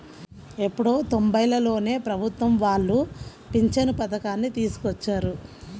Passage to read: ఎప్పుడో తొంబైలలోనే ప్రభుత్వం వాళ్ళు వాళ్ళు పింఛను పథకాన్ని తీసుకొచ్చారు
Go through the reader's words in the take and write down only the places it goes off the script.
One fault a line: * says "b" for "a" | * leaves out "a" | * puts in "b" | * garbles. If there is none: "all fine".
* leaves out "వాళ్ళు"